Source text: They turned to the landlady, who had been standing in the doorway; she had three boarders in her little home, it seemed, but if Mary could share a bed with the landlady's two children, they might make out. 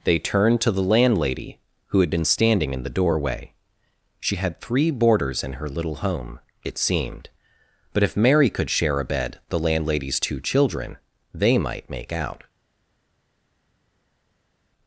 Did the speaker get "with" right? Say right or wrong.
wrong